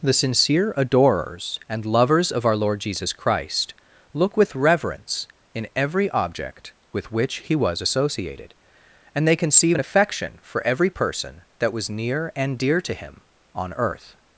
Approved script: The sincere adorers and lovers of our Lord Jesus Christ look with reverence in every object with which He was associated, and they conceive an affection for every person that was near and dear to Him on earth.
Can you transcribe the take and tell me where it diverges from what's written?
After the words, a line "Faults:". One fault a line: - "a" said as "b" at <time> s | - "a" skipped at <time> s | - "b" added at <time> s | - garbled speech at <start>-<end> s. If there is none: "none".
The sincere adorers and lovers of our Lord Jesus Christ look with reverence in every object with which He was associated, and they conceive an affection for every person that was near and dear to Him on earth.
Faults:
none